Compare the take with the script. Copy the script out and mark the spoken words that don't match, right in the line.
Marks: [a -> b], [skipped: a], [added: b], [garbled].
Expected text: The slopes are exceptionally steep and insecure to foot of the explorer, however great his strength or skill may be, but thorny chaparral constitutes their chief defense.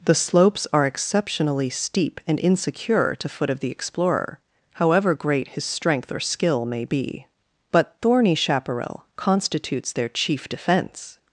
The slopes are exceptionally steep and insecure to foot of the explorer, however great his strength or skill may be, but thorny chaparral constitutes their chief defense.